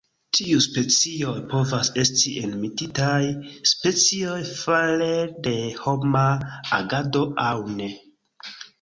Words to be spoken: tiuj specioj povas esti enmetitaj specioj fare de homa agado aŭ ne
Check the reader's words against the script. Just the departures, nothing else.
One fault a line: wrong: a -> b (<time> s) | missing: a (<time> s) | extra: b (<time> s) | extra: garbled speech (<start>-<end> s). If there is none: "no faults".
no faults